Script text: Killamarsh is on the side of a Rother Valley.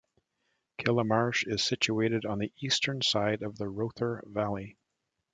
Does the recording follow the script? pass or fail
fail